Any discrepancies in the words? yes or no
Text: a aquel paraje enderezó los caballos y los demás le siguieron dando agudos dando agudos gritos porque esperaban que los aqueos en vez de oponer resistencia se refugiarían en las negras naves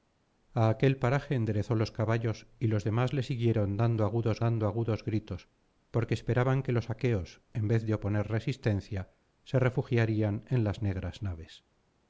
no